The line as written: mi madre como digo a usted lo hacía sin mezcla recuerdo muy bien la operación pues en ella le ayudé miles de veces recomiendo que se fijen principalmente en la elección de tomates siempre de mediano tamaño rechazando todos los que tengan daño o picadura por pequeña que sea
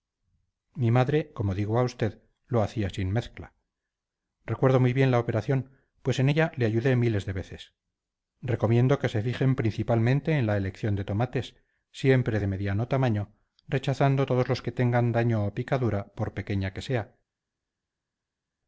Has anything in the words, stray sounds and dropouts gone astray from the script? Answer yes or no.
no